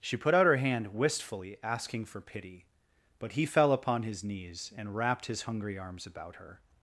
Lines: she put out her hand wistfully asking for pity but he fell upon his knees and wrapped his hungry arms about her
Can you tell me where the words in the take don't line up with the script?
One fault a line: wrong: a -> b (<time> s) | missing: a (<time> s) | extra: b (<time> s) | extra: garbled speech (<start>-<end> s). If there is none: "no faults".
no faults